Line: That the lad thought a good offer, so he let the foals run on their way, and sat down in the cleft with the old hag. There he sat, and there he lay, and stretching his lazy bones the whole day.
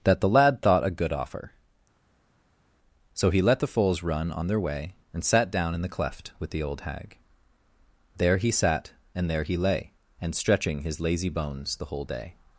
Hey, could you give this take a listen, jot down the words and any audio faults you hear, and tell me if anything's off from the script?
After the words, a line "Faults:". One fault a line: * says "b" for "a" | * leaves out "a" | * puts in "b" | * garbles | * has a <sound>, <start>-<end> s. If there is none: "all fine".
That the lad thought a good offer, so he let the foals run on their way, and sat down in the cleft with the old hag. There he sat, and there he lay, and stretching his lazy bones the whole day.
Faults:
all fine